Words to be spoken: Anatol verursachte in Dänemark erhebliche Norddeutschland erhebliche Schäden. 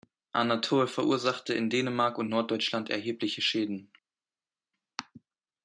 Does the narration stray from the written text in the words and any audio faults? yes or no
yes